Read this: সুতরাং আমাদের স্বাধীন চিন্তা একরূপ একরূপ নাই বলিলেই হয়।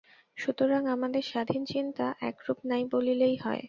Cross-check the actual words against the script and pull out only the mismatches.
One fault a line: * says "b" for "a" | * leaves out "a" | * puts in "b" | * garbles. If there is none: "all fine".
* leaves out "একরূপ"